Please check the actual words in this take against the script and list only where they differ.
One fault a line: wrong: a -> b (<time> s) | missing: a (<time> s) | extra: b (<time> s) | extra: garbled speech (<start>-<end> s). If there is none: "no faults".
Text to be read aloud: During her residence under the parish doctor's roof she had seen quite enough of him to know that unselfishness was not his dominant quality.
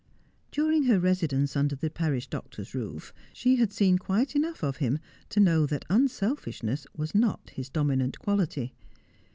no faults